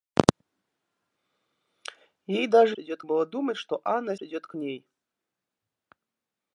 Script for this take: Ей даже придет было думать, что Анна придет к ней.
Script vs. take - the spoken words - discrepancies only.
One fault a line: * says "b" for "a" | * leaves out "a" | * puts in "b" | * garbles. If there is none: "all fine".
all fine